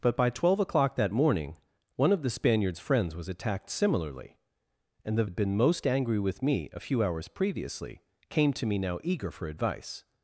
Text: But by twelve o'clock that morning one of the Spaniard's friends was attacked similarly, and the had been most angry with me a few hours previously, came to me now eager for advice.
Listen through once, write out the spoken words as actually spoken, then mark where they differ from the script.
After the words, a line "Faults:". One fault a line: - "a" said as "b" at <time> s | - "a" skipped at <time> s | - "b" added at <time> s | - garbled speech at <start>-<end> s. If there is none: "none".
But by twelve o'clock that morning one of the Spaniard's friends was attacked similarly, and the had been most angry with me a few hours previously, came to me now eager for advice.
Faults:
none